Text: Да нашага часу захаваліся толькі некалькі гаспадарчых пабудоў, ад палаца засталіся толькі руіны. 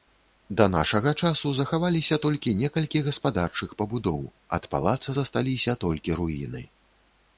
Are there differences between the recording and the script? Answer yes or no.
no